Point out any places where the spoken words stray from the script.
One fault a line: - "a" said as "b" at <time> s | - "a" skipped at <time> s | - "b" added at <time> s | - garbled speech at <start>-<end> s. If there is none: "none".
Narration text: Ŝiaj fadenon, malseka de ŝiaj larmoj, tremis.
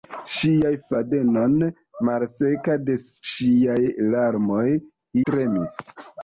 none